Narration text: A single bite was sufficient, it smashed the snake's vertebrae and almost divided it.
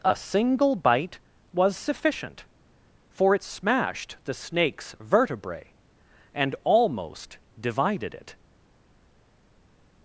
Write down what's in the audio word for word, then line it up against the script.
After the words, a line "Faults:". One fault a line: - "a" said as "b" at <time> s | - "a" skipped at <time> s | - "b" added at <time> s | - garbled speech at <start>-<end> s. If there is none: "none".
A single bite was sufficient, for it smashed the snake's vertebrae and almost divided it.
Faults:
- "for" added at 3.1 s